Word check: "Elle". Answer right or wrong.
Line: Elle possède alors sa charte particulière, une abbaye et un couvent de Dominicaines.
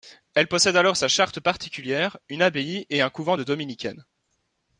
right